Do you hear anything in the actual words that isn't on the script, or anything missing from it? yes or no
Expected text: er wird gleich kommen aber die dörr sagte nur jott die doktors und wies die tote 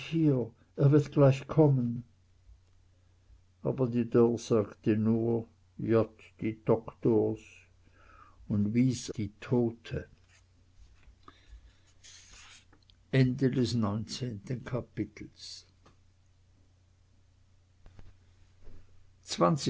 no